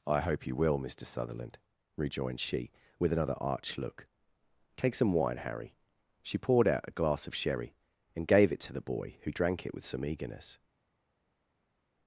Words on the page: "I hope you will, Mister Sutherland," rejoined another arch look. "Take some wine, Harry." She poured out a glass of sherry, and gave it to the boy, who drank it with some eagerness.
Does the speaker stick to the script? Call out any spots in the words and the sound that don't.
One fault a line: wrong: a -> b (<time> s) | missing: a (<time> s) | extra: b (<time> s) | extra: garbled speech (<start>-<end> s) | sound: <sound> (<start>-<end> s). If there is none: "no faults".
extra: she with (2.4 s)